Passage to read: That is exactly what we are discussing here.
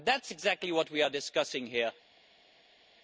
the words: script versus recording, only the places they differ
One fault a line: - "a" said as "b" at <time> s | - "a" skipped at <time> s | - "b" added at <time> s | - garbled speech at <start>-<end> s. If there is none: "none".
none